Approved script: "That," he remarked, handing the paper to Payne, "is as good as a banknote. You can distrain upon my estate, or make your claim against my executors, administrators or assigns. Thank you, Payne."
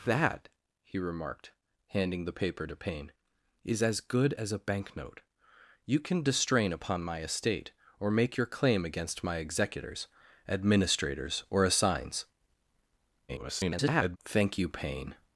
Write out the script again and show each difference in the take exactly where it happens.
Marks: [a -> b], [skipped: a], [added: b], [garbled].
"That," he remarked, handing the paper to Payne, "is as good as a banknote. You can distrain upon my estate, or make your claim against my executors, administrators or assigns. [garbled] Thank you, Payne."